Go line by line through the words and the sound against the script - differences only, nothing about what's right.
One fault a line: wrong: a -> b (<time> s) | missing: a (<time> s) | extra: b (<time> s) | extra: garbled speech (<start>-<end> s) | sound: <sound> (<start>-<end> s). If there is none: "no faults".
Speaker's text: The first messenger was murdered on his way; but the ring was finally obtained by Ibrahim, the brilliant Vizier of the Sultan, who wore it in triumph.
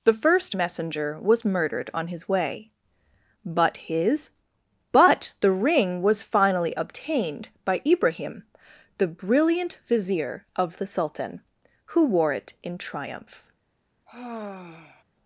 extra: his but (3.8 s)
sound: sigh (14.1-15.0 s)